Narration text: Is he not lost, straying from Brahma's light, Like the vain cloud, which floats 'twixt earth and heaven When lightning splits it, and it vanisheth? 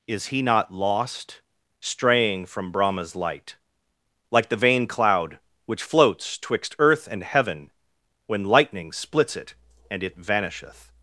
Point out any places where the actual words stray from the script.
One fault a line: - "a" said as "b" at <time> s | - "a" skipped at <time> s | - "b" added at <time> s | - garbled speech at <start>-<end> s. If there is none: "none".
none